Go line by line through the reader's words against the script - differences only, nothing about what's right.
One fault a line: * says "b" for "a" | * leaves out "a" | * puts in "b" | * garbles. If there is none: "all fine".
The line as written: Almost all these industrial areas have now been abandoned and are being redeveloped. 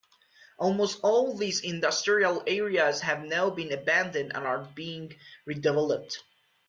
all fine